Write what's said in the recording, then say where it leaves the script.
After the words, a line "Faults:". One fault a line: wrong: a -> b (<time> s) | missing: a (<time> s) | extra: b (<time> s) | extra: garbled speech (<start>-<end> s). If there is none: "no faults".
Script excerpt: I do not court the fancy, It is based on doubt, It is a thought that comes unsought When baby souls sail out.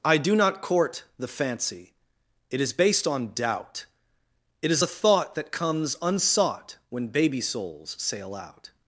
I do not court the fancy, It is based on doubt, It is a thought that comes unsought When baby souls sail out.
Faults:
no faults